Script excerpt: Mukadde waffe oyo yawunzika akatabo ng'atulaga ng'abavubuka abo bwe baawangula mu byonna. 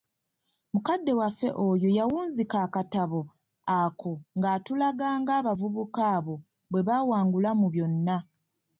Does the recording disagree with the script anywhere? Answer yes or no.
yes